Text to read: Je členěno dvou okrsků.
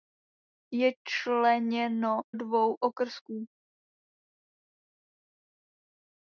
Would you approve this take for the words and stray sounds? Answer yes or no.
yes